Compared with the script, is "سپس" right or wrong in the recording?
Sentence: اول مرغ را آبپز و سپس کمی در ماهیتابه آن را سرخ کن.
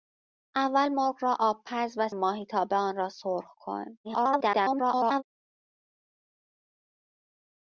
wrong